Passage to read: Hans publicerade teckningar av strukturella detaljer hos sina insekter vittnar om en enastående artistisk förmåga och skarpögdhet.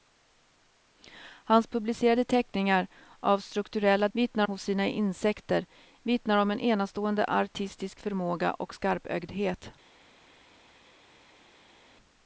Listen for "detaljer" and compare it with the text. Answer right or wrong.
wrong